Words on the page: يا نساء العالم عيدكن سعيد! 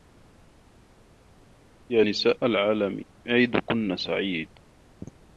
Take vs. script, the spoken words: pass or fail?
pass